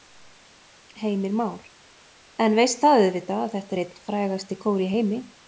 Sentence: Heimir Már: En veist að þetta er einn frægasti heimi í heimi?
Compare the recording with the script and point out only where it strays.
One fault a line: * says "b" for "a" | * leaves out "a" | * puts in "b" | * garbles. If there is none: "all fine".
* puts in "það auðvitað"
* says "kór" for "heimi"